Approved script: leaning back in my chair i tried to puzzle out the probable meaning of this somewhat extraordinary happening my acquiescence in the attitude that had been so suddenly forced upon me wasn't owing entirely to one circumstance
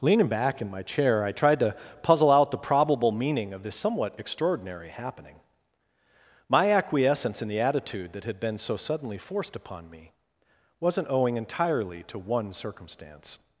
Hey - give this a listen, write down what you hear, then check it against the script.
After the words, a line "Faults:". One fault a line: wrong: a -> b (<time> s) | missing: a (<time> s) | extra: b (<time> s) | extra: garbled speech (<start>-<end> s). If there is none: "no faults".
leaning back in my chair i tried to puzzle out the probable meaning of this somewhat extraordinary happening my acquiescence in the attitude that had been so suddenly forced upon me wasn't owing entirely to one circumstance
Faults:
no faults